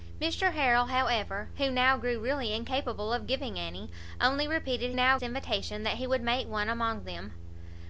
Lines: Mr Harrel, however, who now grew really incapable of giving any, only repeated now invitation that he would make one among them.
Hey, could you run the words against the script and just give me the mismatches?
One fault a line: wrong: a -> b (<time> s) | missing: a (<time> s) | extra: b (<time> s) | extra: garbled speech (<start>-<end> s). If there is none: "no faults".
no faults